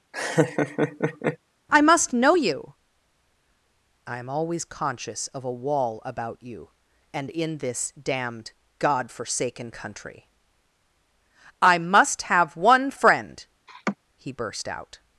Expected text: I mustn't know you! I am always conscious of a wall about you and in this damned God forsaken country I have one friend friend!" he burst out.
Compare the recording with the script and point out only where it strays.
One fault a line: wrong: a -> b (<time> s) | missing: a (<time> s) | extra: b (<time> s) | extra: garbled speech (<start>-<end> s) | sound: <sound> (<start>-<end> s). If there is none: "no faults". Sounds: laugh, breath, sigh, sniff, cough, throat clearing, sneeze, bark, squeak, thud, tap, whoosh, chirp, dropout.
sound: laugh (0.1-1.4 s)
wrong: mustn't -> must (1.8 s)
extra: must (11.8 s)
missing: friend (13.5 s)
sound: laugh (13.7-14.0 s)